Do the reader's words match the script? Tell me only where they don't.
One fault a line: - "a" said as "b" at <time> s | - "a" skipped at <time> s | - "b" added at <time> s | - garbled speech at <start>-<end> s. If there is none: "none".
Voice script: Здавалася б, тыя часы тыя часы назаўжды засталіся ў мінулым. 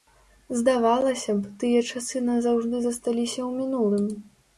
- "тыя часы" skipped at 2.2 s